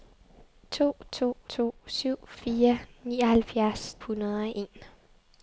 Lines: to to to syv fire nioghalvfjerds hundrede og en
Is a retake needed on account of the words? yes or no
no